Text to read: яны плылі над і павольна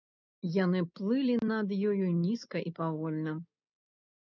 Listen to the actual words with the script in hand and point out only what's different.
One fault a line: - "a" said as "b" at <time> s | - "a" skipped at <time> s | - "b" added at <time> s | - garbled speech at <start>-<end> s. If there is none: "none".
- "ёю нізка" added at 1.9 s